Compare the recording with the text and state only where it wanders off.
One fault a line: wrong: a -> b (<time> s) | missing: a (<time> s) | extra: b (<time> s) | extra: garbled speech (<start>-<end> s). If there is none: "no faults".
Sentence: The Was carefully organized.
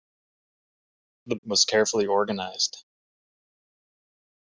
no faults